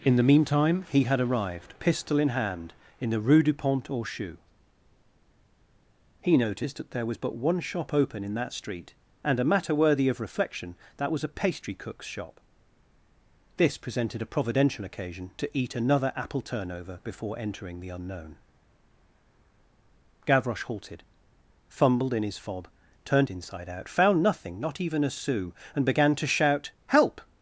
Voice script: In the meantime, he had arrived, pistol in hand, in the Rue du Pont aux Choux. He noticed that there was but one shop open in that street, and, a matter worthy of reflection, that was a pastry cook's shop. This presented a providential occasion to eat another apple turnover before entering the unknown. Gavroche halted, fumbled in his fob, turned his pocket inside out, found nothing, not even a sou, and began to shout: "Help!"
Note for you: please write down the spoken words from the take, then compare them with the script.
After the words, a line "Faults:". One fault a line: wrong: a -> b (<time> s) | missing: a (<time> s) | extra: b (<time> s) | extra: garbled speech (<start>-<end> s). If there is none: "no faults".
In the meantime, he had arrived, pistol in hand, in the Rue du Pont aux Choux. He noticed that there was but one shop open in that street, and, a matter worthy of reflection, that was a pastry cook's shop. This presented a providential occasion to eat another apple turnover before entering the unknown. Gavroche halted, fumbled in his fob, turned inside out, found nothing, not even a sou, and began to shout: "Help!"
Faults:
missing: his pocket (23.3 s)